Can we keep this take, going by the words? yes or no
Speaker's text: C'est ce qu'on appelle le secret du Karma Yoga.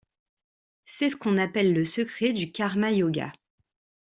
yes